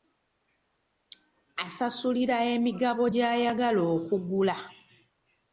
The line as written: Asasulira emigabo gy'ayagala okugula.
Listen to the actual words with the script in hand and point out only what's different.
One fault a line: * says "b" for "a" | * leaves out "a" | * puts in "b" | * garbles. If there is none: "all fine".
all fine